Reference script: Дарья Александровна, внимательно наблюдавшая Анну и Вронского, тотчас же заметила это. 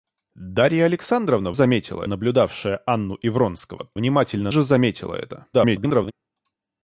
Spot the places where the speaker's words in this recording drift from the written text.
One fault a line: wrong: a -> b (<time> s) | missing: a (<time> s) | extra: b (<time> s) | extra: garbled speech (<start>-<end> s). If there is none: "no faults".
wrong: внимательно -> заметила (1.5 s)
wrong: тотчас -> внимательно (3.9 s)
extra: garbled speech (5.5-6.1 s)